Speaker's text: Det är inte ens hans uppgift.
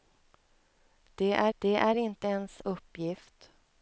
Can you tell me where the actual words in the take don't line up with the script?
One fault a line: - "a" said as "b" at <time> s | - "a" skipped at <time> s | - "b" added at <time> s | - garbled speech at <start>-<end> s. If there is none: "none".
- "det är" added at 1.6 s
- "hans" skipped at 2.6 s